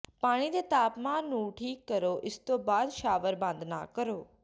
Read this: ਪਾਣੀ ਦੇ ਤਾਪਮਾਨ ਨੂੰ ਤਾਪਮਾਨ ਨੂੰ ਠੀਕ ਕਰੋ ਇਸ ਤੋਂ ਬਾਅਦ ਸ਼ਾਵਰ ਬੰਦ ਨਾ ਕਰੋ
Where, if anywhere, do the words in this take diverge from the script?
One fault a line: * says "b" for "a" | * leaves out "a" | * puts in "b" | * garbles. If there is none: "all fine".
* leaves out "ਤਾਪਮਾਨ ਨੂੰ"